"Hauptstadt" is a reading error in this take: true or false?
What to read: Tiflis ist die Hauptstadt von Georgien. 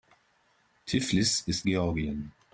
true